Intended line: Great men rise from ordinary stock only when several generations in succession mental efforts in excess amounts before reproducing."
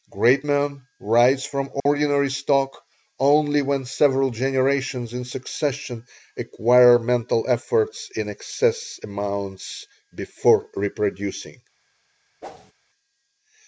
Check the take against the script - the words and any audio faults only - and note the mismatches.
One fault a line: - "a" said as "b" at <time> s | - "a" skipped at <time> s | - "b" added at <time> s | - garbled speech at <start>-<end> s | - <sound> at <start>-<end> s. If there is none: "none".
- dropout at 1.8-1.9 s
- "acquire" added at 6.4 s
- whoosh at 12.4-12.7 s